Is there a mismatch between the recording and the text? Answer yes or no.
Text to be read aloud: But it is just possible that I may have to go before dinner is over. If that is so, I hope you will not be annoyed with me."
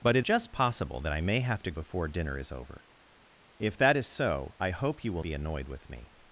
yes